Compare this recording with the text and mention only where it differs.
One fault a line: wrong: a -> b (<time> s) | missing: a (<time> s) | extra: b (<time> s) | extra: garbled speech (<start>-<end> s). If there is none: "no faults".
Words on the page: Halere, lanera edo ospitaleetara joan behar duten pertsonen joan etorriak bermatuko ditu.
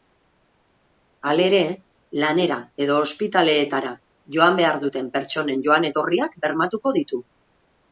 no faults